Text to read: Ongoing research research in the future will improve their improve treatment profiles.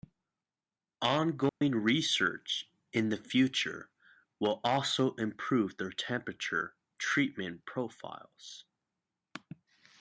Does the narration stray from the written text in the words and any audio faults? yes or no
yes